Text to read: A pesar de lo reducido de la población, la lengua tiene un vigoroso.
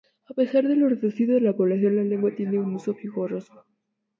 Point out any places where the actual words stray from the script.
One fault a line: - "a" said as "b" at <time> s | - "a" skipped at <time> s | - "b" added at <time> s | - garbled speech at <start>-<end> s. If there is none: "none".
- "uso" added at 2.7 s